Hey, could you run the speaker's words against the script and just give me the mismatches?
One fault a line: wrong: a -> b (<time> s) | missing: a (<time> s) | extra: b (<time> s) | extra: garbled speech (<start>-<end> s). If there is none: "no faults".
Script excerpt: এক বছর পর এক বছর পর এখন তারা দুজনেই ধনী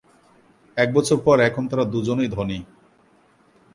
missing: এক বছর পর (1.4 s)